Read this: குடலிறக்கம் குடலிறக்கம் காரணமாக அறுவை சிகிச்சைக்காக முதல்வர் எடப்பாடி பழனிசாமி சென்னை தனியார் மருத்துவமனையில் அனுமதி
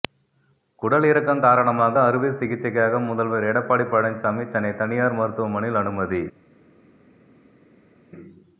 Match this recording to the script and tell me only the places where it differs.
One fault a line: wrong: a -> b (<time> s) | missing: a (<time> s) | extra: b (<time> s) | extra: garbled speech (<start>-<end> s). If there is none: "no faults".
missing: குடலிறக்கம் (1.4 s)